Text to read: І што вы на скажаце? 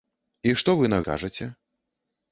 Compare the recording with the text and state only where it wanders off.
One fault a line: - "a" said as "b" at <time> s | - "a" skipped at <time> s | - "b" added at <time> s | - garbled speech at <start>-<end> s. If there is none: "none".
none